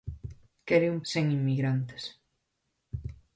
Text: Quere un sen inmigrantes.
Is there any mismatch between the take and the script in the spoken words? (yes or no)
no